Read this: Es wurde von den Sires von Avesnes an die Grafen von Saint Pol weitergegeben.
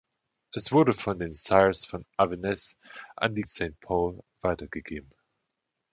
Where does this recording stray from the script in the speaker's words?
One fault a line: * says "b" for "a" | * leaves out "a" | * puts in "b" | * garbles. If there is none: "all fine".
* leaves out "Grafen von"